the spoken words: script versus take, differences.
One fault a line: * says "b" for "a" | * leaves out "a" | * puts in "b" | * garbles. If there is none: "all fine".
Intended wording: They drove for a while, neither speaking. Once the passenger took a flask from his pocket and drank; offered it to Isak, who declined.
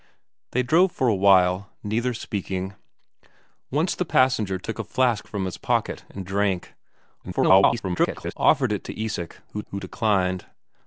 * garbles
* puts in "who"